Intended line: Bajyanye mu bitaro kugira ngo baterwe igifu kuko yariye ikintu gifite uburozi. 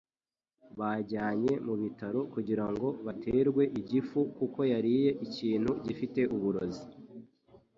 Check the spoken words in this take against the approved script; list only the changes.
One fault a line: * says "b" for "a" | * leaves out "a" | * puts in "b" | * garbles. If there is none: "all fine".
all fine